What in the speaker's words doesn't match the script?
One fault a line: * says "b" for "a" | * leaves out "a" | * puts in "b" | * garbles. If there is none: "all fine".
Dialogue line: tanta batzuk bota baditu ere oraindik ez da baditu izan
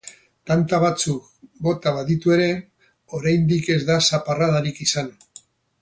* says "zaparradarik" for "baditu"